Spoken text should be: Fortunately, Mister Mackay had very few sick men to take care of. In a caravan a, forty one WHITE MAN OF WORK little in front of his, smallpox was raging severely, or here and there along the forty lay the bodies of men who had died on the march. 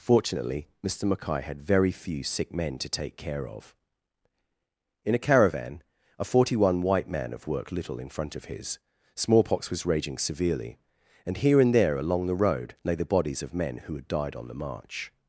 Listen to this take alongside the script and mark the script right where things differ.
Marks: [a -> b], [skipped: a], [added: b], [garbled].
Fortunately, Mister Mackay had very few sick men to take care of. In a caravan a, forty one WHITE MAN OF WORK little in front of his, smallpox was raging severely, [or -> and] here and there along the [forty -> road] lay the bodies of men who had died on the march.